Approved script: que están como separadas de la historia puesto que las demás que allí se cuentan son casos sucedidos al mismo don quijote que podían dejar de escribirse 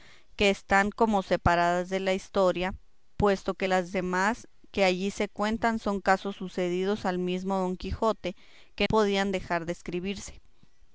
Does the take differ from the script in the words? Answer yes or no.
no